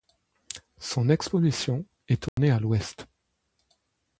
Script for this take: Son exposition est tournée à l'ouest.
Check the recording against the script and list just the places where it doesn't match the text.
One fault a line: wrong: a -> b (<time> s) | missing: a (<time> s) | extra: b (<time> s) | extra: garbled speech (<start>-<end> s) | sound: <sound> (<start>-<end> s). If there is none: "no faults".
sound: dropout (2.3-2.4 s)